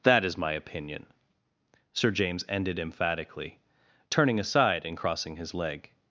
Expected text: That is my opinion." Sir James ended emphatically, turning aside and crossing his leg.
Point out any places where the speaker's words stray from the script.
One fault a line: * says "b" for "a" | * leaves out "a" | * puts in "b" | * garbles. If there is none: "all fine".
all fine